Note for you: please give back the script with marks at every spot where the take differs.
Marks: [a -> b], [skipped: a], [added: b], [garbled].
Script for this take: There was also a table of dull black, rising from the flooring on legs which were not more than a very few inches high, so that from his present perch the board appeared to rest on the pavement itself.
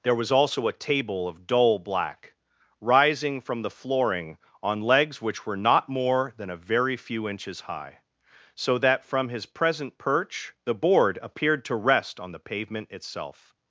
There was also a table of dull black, rising from the flooring on legs which were not more than a very few inches high, so that from his present perch the board appeared to rest on the pavement itself.